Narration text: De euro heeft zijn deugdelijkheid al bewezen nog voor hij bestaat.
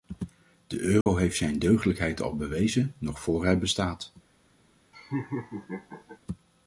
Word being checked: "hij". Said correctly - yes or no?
yes